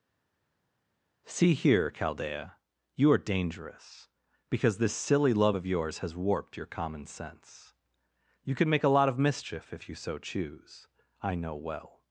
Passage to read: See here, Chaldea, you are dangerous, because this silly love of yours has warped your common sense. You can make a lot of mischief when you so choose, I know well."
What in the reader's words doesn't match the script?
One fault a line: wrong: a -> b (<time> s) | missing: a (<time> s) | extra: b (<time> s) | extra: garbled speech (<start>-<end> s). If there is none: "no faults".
wrong: when -> if (9.7 s)